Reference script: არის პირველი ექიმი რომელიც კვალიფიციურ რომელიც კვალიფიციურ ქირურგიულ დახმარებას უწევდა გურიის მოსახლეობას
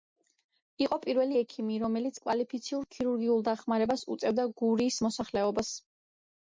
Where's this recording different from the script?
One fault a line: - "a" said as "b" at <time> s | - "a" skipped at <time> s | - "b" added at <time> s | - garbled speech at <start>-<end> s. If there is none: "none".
- "არის" said as "იყო" at 0.8 s
- "რომელიც კვალიფიციურ" skipped at 2.8 s